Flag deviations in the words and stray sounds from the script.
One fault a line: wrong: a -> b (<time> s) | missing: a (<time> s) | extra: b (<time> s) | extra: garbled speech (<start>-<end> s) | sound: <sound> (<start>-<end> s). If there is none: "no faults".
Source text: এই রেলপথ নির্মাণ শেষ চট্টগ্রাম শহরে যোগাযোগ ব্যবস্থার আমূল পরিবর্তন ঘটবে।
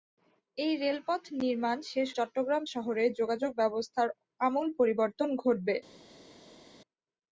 no faults